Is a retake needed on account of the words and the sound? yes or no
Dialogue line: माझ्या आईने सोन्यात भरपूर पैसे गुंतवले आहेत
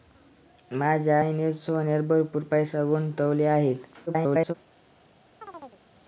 yes